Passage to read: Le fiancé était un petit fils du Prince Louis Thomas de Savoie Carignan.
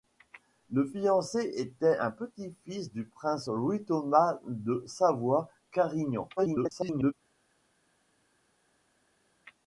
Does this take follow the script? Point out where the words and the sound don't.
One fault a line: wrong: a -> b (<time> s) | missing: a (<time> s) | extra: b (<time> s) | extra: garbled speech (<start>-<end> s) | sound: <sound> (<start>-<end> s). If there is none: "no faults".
extra: garbled speech (6.4-7.1 s)